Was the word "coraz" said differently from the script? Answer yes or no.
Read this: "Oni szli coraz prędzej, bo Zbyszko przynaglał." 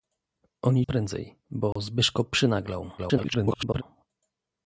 yes